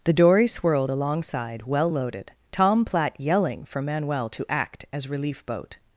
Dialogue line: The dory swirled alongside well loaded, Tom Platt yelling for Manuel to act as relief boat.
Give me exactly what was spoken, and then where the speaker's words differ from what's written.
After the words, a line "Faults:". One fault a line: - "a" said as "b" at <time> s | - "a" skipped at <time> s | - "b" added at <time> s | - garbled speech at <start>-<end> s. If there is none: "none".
The dory swirled alongside well loaded, Tom Platt yelling for Manuel to act as relief boat.
Faults:
none